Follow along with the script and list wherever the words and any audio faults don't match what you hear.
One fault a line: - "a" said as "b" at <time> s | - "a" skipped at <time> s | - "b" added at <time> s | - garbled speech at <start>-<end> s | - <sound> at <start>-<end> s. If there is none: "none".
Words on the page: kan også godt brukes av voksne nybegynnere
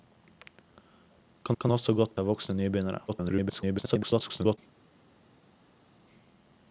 - "kan" added at 1.6 s
- "brukes" skipped at 2.2 s
- garbled speech at 3.1-4.6 s